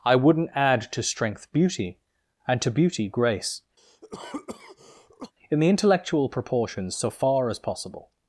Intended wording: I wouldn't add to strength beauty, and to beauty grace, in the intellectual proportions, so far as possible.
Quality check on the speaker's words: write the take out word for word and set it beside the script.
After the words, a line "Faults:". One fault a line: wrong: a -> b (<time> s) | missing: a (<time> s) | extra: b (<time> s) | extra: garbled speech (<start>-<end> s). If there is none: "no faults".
I wouldn't add to strength beauty, and to beauty grace, in the intellectual proportions, so far as possible.
Faults:
no faults